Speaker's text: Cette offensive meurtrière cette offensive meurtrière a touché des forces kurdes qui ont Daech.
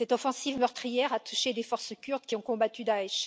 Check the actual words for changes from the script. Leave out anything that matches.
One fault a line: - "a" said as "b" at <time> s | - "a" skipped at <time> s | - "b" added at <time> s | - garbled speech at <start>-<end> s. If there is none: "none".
- "cette offensive meurtrière" skipped at 1.1 s
- "combattu" added at 2.4 s